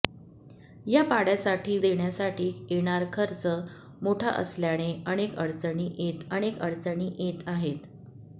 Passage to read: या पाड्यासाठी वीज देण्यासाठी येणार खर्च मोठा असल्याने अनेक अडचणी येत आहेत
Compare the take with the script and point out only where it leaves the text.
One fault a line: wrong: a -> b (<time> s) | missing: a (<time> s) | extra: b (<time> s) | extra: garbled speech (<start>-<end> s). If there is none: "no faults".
missing: वीज (1.8 s)
extra: अनेक अडचणी येत (6.3 s)